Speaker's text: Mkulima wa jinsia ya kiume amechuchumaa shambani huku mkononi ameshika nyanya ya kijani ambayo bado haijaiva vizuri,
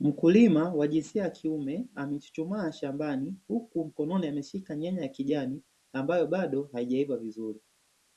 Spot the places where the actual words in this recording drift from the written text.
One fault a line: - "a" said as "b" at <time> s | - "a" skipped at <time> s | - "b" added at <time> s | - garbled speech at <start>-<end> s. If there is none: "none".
none